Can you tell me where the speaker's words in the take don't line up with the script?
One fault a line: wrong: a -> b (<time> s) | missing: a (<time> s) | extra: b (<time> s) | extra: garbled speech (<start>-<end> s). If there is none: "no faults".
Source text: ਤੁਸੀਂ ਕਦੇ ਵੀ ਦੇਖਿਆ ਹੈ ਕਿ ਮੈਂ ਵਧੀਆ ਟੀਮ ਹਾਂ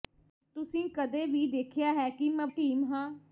missing: ਵਧੀਆ (2.5 s)